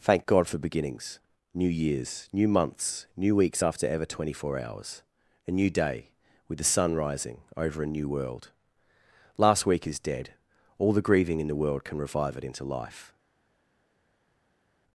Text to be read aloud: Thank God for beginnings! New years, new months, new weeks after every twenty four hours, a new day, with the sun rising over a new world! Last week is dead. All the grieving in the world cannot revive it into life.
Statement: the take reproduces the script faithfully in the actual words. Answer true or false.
false